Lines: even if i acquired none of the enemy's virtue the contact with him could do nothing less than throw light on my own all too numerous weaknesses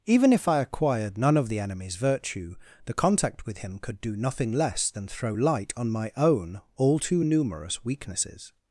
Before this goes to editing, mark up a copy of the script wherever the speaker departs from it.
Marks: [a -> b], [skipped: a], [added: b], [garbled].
even if i acquired none of the enemy's virtue the contact with him could do nothing less than throw light on my own all too numerous weaknesses